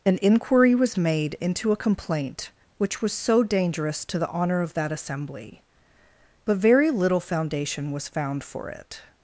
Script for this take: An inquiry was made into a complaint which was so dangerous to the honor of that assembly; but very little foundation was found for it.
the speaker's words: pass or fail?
pass